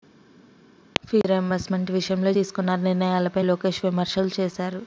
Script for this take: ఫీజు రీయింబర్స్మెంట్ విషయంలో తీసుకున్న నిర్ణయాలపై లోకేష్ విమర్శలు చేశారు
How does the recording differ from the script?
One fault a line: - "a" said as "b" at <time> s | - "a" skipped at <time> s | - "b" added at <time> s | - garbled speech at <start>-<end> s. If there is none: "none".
none